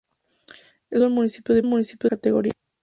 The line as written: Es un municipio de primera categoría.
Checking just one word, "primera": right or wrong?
wrong